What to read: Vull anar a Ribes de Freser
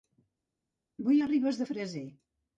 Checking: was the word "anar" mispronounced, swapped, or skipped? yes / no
yes